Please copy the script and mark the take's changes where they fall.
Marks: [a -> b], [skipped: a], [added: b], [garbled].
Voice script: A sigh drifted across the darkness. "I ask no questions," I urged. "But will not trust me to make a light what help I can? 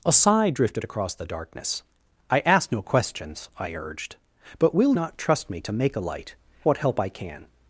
A sigh drifted across the darkness. "I ask no questions," I urged. "But will not trust me to make a light what help I can?